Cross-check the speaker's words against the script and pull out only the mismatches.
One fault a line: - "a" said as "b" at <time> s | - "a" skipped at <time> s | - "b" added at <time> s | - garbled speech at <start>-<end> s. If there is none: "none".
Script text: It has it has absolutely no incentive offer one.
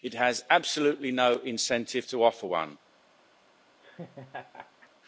- "it has" skipped at 0.4 s
- "to" added at 2.1 s